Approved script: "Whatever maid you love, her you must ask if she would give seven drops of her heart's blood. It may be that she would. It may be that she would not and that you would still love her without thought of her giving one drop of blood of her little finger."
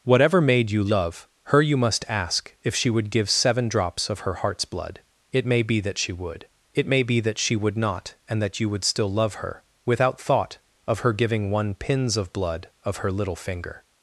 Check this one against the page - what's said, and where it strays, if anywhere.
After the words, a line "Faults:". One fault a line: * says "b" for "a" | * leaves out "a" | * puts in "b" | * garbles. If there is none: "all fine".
"Whatever maid you love, her you must ask if she would give seven drops of her heart's blood. It may be that she would. It may be that she would not and that you would still love her without thought of her giving one pins of blood of her little finger."
Faults:
* says "pins" for "drop"